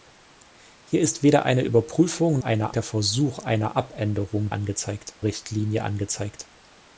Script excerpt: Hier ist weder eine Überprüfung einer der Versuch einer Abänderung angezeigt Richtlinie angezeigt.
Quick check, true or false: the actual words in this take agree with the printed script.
true